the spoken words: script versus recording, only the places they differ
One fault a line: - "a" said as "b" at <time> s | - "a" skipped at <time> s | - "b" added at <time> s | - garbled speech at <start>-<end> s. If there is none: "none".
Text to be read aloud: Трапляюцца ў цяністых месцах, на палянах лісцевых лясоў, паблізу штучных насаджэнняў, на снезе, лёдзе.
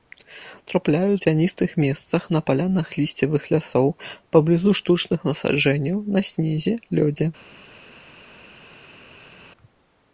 - "ў" skipped at 1.2 s